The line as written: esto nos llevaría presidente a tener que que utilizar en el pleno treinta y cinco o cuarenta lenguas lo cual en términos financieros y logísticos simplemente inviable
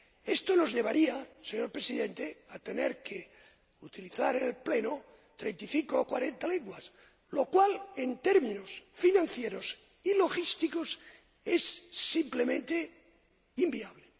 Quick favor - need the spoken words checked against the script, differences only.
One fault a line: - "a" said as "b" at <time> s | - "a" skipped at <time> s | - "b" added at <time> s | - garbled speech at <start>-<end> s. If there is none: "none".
- "señor" added at 1.4 s
- "que" skipped at 3.3 s
- "es" added at 11.4 s